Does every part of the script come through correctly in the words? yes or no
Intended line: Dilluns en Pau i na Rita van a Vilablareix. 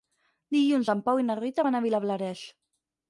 yes